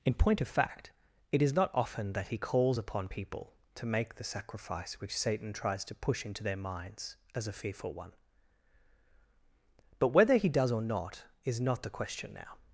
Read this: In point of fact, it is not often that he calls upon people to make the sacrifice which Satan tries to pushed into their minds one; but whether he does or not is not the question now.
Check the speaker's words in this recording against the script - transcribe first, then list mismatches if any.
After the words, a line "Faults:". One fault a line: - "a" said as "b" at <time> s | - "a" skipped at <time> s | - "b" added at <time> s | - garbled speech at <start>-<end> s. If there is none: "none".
In point of fact, it is not often that he calls upon people to make the sacrifice which Satan tries to push into their minds as a fearful one; but whether he does or not is not the question now.
Faults:
- "pushed" said as "push" at 5.9 s
- "as a fearful" added at 7.3 s